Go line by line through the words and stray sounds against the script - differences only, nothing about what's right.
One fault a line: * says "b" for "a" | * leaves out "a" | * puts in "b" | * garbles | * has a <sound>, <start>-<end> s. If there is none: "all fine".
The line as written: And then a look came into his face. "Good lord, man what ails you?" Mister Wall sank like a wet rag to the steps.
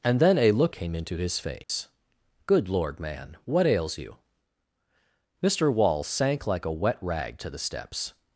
* has a dropout, 1.6-1.7 s